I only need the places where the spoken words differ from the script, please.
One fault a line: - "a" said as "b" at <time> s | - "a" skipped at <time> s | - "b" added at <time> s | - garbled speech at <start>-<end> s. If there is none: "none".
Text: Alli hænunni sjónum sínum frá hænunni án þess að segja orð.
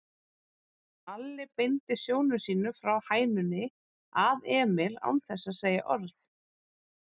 - "hænunni" said as "beindi" at 1.6 s
- "að Emil" added at 4.2 s